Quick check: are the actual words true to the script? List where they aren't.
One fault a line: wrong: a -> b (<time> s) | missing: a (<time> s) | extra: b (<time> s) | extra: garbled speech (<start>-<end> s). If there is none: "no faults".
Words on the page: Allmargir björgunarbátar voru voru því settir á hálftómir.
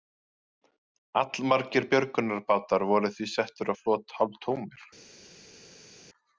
missing: voru (3.1 s)
extra: flot (3.8 s)